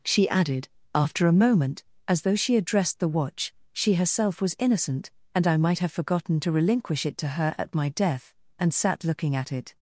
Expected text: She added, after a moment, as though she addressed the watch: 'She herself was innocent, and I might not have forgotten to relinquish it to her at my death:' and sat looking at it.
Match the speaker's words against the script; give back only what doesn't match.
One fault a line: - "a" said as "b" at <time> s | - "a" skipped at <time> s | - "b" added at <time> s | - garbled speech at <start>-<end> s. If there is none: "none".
- "not" skipped at 5.8 s